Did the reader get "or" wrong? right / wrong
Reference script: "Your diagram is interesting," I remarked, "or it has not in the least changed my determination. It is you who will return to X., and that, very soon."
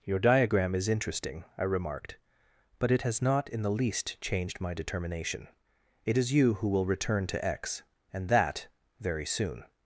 wrong